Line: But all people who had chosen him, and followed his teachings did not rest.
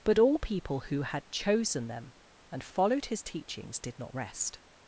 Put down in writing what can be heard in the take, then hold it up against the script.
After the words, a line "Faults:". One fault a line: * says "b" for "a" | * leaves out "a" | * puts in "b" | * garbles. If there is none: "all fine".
But all people who had chosen them, and followed his teachings did not rest.
Faults:
* says "them" for "him"